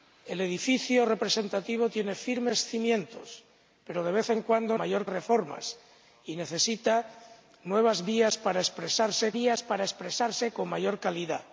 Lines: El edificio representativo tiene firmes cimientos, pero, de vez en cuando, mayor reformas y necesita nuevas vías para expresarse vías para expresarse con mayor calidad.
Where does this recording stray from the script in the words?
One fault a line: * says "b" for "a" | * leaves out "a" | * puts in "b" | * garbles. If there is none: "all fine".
all fine